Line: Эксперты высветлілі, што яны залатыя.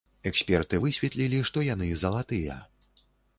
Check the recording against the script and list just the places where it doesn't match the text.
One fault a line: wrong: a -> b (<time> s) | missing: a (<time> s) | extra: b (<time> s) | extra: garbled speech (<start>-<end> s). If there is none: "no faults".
no faults